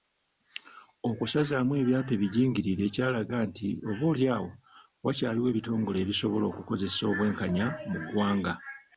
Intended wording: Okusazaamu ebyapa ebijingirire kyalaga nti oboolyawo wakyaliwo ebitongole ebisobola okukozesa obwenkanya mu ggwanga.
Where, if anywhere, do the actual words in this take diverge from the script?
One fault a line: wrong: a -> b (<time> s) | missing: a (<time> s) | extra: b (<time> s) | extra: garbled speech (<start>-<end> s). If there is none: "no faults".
no faults